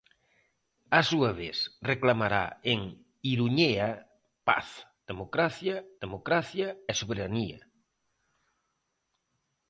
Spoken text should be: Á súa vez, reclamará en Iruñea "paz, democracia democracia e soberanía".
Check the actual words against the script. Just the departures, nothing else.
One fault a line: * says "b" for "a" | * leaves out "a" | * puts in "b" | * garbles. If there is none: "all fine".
all fine